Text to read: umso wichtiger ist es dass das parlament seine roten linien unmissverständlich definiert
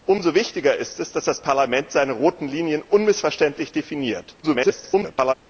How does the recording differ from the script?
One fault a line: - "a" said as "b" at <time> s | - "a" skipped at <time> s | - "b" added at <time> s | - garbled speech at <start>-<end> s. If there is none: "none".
- garbled speech at 4.4-5.3 s